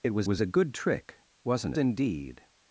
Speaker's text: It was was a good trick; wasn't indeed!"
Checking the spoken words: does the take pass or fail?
pass